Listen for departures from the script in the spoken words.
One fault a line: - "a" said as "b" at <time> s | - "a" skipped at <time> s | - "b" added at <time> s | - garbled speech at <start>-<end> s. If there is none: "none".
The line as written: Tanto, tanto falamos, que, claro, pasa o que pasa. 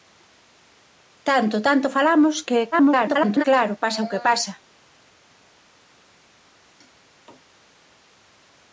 - garbled speech at 2.7-3.4 s